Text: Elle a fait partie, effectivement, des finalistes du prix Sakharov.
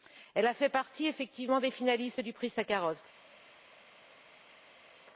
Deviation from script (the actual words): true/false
false